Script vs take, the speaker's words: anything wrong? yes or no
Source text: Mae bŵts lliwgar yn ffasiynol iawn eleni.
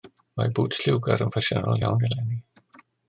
no